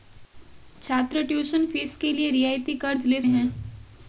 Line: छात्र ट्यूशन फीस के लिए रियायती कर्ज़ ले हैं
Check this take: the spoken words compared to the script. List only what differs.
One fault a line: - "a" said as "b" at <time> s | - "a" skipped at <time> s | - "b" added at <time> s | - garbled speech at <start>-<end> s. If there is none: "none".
none